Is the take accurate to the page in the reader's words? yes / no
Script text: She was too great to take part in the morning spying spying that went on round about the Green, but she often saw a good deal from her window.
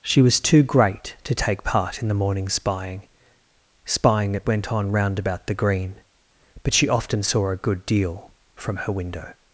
yes